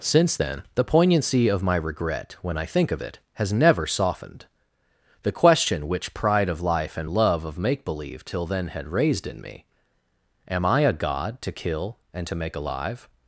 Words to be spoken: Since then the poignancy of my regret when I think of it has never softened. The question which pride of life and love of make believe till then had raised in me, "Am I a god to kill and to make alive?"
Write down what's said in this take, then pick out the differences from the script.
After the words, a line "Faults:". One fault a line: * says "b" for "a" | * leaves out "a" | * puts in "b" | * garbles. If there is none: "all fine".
Since then the poignancy of my regret when I think of it has never softened. The question which pride of life and love of make believe till then had raised in me, "Am I a god to kill and to make alive?"
Faults:
all fine